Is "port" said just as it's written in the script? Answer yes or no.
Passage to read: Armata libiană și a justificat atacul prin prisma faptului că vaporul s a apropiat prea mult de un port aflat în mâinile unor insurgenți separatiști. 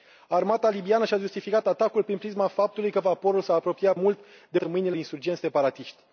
no